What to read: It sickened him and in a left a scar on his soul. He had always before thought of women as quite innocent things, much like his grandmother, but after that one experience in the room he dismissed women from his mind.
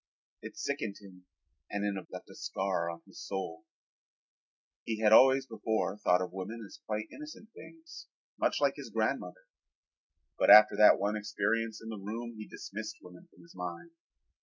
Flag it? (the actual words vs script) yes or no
no